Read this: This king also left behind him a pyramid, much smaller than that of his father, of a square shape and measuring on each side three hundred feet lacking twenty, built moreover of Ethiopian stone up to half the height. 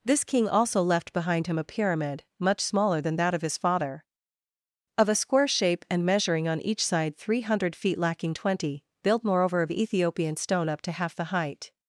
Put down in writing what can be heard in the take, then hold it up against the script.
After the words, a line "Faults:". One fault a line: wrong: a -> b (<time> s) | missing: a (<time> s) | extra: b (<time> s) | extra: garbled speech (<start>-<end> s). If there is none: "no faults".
This king also left behind him a pyramid, much smaller than that of his father, of a square shape and measuring on each side three hundred feet lacking twenty, built moreover of Ethiopian stone up to half the height.
Faults:
no faults